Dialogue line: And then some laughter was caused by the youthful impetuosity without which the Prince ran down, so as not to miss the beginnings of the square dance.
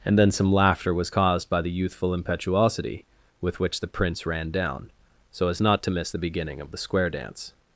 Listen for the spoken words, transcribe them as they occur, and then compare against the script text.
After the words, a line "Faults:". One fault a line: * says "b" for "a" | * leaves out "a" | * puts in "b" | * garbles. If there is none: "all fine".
And then some laughter was caused by the youthful impetuosity with which the Prince ran down, so as not to miss the beginning of the square dance.
Faults:
* says "with" for "without"
* says "beginning" for "beginnings"